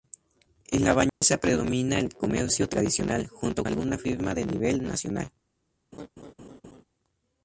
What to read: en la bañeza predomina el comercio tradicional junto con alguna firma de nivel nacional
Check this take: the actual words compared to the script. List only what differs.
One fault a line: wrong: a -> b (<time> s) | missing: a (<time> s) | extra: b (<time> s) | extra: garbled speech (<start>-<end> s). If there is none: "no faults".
missing: con (3.7 s)